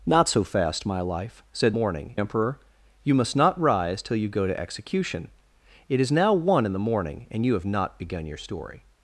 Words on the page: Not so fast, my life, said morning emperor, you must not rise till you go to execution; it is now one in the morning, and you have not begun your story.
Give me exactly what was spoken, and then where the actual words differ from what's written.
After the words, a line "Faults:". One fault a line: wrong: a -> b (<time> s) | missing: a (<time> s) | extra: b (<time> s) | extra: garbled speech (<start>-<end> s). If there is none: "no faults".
Not so fast, my life, said morning emperor, you must not rise till you go to execution; it is now one in the morning, and you have not begun your story.
Faults:
no faults